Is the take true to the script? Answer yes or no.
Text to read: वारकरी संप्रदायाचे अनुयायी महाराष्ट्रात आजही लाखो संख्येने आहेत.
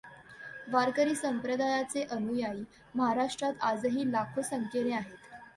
yes